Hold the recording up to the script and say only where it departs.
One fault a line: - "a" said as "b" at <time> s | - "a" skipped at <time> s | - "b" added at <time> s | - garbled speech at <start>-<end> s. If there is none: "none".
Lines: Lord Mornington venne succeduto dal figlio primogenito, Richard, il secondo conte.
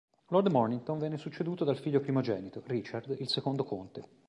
none